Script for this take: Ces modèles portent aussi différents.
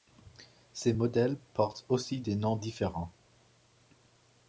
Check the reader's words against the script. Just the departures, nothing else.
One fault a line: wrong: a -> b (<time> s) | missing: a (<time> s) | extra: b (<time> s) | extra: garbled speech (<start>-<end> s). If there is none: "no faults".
extra: des noms (2.2 s)